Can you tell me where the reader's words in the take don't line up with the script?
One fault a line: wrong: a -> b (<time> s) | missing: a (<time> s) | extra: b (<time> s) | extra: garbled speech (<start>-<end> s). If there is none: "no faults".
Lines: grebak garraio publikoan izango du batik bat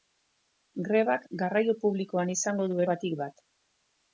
no faults